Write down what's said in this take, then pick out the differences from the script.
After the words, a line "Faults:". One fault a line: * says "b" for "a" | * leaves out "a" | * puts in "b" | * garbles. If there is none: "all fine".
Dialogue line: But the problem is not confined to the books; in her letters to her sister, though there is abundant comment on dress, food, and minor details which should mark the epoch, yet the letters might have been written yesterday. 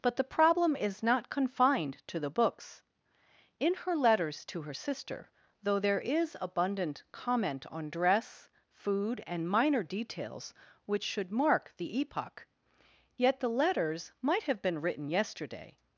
But the problem is not confined to the books; in her letters to her sister, though there is abundant comment on dress, food, and minor details which should mark the epoch, yet the letters might have been written yesterday.
Faults:
all fine